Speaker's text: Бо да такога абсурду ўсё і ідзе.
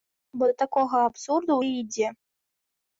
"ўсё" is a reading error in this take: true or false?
true